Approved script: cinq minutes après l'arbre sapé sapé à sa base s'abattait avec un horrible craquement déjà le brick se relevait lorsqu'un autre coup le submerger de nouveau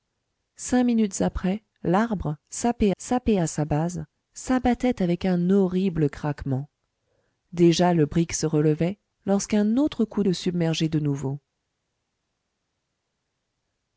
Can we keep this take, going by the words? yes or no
yes